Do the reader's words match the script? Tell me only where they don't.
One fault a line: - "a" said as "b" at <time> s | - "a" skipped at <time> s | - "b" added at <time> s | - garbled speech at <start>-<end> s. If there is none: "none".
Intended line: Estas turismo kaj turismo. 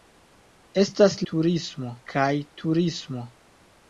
none